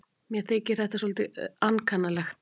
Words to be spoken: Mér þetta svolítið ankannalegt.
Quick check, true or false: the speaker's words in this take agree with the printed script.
false